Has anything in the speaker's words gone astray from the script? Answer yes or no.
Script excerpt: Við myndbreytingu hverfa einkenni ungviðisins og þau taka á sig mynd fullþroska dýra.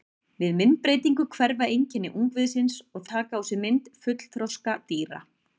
yes